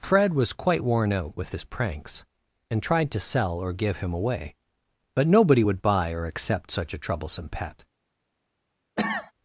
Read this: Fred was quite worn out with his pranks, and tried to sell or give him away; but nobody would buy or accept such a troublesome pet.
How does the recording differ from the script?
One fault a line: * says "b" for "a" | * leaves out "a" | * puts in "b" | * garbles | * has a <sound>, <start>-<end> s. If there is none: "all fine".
* has a cough, 9.0-9.3 s